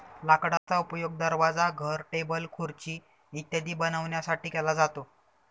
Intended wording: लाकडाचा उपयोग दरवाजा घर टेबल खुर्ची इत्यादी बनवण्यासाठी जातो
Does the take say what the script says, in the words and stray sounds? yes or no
no